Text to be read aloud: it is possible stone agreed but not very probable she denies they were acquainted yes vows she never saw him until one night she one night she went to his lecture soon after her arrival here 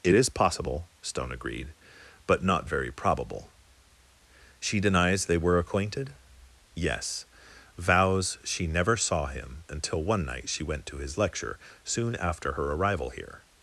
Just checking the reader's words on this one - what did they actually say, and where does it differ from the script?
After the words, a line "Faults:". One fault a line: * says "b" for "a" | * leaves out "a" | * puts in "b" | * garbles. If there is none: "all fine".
it is possible stone agreed but not very probable she denies they were acquainted yes vows she never saw him until one night she went to his lecture soon after her arrival here
Faults:
* leaves out "one night she"